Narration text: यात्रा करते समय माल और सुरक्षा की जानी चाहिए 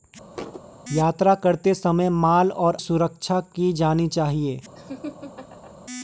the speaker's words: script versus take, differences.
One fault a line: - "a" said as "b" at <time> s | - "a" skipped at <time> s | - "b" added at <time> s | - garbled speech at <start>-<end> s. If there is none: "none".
none